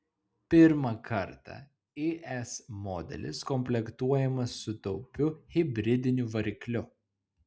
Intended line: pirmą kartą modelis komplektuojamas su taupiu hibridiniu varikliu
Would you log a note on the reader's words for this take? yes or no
yes